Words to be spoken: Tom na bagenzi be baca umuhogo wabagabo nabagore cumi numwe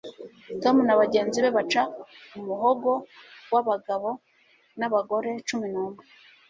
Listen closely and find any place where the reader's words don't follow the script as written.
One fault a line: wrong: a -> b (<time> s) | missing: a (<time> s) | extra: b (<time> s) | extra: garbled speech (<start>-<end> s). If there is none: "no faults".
no faults